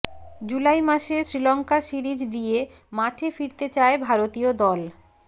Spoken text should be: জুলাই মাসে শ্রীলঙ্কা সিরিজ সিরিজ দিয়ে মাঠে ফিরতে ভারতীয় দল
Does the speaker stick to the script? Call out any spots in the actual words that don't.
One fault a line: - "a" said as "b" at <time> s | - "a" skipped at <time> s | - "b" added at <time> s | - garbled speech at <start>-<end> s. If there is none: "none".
- "সিরিজ" skipped at 2.2 s
- "চায়" added at 3.7 s